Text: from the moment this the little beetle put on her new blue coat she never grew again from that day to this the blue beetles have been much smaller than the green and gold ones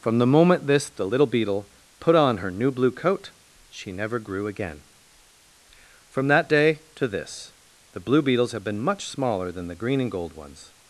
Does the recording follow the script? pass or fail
pass